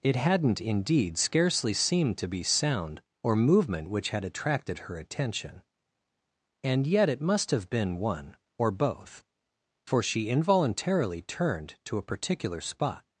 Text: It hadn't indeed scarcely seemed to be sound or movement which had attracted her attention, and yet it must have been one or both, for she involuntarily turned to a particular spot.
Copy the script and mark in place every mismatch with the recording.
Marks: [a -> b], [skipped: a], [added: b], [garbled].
It hadn't indeed scarcely seemed to be sound or movement which had attracted her attention, and yet it must have been one or both, for she involuntarily turned to a particular spot.